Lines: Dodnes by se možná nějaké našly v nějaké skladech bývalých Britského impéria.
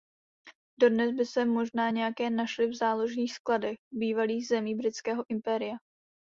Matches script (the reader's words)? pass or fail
fail